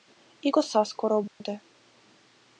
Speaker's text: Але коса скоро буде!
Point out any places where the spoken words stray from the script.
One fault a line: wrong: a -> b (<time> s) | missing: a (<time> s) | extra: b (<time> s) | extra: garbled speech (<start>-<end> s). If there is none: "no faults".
wrong: Але -> І (0.4 s)